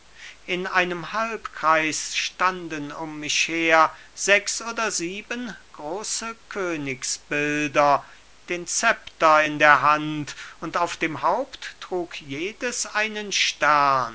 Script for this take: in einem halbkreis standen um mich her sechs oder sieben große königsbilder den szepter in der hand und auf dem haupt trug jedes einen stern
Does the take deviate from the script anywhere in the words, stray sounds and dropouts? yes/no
no